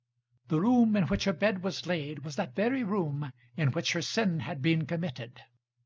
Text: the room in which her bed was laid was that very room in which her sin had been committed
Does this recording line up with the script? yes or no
yes